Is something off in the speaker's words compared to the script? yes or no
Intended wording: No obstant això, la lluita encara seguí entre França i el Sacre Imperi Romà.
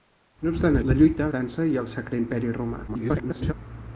yes